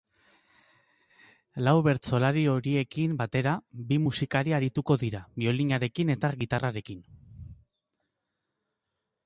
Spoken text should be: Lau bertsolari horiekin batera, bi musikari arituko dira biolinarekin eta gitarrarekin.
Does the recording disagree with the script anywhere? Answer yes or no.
no